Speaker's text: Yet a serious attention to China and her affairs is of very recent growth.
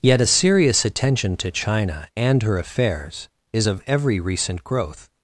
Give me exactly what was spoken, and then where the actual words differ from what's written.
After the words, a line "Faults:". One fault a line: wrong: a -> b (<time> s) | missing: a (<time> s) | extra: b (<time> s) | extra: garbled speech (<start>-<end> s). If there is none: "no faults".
Yet a serious attention to China and her affairs is of every recent growth.
Faults:
wrong: very -> every (3.9 s)